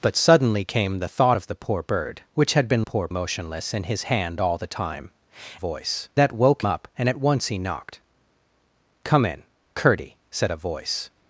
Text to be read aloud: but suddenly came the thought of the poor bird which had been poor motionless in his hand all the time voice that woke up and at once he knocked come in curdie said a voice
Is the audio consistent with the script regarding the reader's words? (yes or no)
yes